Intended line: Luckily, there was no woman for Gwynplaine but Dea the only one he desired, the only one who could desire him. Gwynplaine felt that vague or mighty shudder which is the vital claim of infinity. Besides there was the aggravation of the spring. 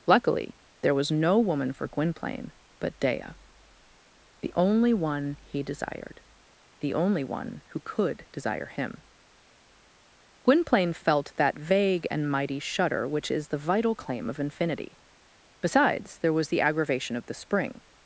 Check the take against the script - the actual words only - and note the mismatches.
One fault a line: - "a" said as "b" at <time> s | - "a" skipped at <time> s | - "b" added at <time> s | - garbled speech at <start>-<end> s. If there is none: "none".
- "or" said as "and" at 12.1 s